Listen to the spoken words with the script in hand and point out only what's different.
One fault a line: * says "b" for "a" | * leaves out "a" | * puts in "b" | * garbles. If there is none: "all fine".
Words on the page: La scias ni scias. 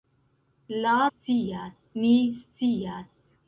all fine